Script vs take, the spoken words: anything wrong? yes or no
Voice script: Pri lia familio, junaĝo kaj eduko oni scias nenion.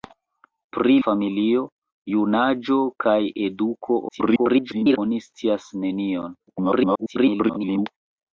yes